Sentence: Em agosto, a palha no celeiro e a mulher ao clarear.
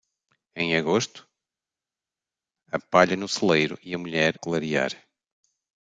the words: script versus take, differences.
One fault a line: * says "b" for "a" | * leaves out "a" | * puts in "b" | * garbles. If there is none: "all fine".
* leaves out "ao"